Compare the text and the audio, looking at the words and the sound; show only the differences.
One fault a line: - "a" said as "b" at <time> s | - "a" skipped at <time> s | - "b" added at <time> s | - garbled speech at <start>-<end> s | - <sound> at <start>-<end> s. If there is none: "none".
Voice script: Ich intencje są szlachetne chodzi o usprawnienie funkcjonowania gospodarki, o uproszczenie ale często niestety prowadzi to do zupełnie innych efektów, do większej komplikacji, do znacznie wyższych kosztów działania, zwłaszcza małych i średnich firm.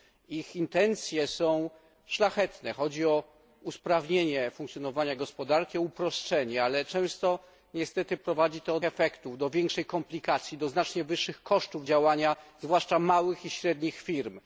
- "do zupełnie innych" skipped at 8.8 s